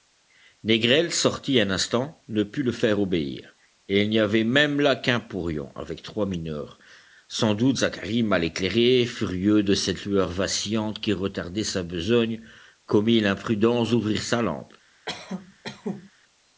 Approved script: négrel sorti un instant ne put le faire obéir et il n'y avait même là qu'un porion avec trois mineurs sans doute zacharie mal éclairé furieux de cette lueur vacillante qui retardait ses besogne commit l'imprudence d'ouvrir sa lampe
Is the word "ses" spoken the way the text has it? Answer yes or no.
no